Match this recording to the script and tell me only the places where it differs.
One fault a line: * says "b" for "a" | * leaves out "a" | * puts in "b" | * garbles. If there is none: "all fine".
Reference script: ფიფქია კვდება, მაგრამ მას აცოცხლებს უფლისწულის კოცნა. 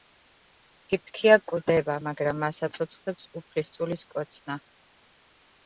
all fine